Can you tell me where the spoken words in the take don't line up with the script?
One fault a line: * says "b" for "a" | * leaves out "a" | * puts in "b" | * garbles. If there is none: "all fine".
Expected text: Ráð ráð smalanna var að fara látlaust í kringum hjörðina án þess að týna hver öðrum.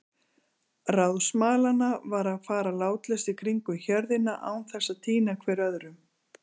* leaves out "ráð"